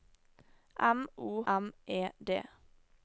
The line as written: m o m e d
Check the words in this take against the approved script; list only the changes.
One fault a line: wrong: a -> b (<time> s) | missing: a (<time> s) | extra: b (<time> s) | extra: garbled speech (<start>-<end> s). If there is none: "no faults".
no faults